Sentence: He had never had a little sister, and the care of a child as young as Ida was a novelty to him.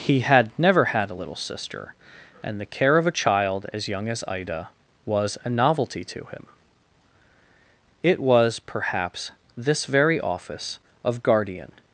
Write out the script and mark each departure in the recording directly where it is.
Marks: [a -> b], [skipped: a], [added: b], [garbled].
He had never had a little sister, and the care of a child as young as Ida was a novelty to him. [added: It was perhaps this very office of guardian]